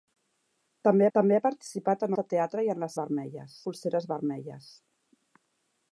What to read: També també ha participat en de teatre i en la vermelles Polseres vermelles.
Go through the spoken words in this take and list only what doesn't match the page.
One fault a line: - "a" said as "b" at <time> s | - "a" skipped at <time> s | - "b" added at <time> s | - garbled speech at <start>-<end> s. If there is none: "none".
none